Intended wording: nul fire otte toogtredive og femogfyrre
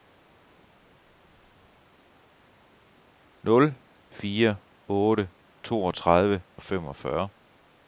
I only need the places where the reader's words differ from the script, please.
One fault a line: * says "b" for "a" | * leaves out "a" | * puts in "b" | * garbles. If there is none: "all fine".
all fine